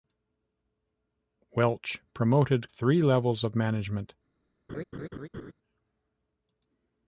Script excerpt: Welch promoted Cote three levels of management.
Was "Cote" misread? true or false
true